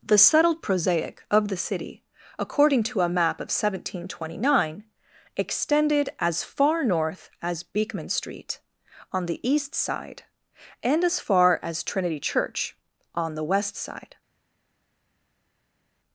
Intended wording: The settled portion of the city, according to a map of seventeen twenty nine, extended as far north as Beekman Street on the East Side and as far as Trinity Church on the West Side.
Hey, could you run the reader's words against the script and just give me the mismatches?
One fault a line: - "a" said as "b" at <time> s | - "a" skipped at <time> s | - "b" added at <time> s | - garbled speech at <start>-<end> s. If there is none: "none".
- "portion" said as "prosaic" at 0.6 s